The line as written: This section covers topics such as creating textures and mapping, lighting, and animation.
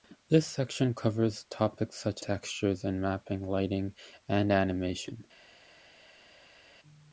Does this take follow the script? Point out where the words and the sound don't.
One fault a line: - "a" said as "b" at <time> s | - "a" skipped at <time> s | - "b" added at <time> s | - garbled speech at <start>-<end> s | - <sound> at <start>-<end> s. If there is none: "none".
- "as creating" skipped at 2.2 s